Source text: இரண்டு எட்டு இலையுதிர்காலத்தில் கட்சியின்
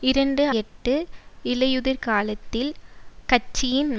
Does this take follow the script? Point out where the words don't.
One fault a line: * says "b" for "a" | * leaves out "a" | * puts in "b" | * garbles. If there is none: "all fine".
all fine